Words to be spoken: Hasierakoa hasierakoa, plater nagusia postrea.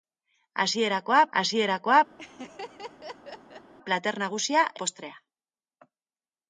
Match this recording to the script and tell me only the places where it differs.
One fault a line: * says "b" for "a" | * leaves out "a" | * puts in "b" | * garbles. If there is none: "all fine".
all fine